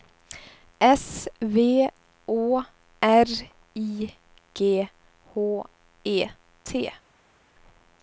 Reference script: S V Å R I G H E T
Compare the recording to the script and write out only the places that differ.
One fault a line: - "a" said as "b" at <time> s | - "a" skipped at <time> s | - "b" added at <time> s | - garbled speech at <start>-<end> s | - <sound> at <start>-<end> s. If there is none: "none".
none